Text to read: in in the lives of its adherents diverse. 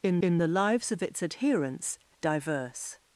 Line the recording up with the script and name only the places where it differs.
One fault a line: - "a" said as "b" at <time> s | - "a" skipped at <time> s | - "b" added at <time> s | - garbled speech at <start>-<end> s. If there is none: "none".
none